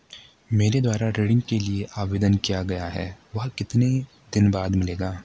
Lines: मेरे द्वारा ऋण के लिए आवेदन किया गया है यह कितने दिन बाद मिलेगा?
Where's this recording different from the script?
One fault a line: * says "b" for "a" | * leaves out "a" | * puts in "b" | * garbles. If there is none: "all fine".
* says "वह" for "यह"